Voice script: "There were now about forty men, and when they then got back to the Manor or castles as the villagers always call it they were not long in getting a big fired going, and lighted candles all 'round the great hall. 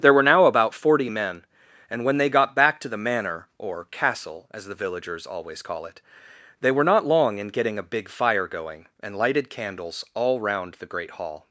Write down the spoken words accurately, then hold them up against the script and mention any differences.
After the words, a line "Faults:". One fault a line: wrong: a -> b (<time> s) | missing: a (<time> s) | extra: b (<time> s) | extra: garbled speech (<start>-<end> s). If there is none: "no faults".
"There were now about forty men, and when they got back to the Manor or castle as the villagers always call it they were not long in getting a big fire going, and lighted candles all 'round the great hall.
Faults:
missing: then (2.3 s)
wrong: castles -> castle (3.8 s)
wrong: fired -> fire (8.1 s)